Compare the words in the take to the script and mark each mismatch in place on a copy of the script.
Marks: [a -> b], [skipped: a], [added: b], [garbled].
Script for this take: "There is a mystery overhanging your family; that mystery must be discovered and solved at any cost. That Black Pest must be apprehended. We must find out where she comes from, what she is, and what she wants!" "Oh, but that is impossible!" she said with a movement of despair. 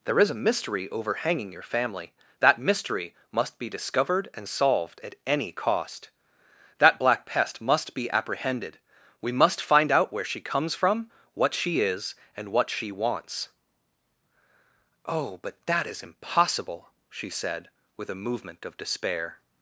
"There is a mystery overhanging your family; that mystery must be discovered and solved at any cost. That Black Pest must be apprehended. We must find out where she comes from, what she is, and what she wants!" "Oh, but that is impossible!" she said with a movement of despair.